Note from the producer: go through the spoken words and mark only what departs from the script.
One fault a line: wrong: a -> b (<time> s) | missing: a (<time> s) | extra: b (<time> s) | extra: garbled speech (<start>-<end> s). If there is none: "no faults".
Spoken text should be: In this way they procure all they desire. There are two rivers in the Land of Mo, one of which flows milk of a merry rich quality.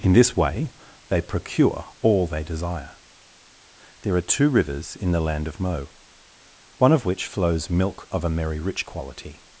no faults